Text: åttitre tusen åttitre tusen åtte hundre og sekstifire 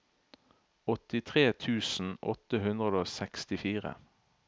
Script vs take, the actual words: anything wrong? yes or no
yes